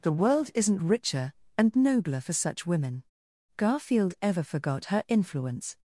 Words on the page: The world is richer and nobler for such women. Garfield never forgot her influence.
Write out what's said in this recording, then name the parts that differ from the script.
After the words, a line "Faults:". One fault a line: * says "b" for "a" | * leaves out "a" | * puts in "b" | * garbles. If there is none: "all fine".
The world isn't richer and nobler for such women. Garfield ever forgot her influence.
Faults:
* says "isn't" for "is"
* says "ever" for "never"